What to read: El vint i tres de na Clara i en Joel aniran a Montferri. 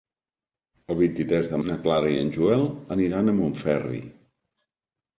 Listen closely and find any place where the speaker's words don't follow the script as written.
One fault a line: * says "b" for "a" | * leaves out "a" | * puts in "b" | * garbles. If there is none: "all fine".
all fine